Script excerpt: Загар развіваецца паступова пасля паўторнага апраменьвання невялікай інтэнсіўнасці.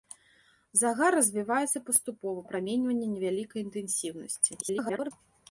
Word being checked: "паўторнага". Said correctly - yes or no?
no